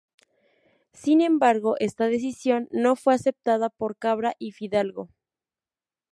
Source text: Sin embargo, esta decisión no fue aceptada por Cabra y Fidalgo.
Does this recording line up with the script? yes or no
yes